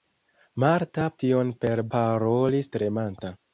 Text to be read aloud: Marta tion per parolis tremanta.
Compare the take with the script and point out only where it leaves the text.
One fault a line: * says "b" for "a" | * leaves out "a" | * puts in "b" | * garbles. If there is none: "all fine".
all fine